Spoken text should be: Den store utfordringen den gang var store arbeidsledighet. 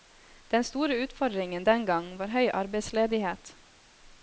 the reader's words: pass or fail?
fail